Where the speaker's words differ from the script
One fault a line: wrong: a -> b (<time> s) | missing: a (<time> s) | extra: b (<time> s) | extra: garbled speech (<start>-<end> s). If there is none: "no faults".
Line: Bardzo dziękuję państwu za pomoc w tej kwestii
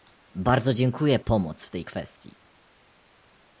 missing: państwu za (1.2 s)